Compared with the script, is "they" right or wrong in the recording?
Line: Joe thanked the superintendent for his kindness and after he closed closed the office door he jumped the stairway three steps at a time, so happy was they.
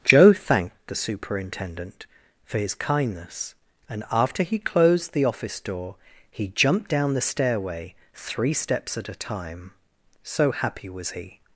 wrong